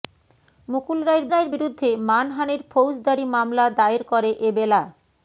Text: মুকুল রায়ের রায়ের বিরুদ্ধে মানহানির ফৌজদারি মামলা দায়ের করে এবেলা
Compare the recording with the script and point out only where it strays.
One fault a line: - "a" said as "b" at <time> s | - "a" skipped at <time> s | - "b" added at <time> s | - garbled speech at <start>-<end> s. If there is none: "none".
none